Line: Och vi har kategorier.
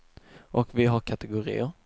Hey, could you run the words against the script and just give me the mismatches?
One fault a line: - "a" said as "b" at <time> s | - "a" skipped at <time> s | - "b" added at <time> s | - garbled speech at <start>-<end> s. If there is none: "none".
none